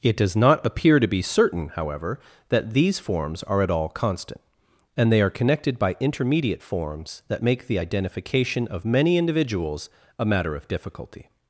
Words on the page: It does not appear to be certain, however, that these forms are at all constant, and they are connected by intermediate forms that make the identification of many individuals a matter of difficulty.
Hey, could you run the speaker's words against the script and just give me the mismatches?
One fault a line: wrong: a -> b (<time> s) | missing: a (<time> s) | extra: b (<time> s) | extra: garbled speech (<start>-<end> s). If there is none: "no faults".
no faults